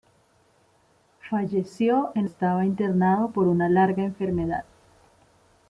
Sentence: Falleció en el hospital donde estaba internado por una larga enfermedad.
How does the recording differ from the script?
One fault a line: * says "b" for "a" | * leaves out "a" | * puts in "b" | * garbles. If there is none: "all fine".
* leaves out "el hospital donde"